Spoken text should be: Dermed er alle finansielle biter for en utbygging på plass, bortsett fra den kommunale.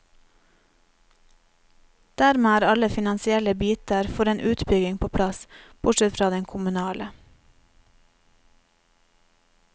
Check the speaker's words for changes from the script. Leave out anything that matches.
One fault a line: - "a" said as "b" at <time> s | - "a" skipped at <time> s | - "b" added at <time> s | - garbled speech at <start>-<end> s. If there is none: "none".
none